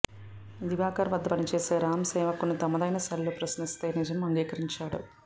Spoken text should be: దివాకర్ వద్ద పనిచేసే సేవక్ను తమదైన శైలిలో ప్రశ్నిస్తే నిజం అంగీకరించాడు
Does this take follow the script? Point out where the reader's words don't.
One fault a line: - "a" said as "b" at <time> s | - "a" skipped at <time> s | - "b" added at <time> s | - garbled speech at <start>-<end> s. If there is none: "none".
- "రామ్" added at 1.8 s